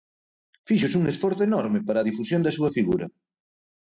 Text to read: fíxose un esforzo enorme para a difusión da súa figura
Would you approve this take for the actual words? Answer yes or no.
yes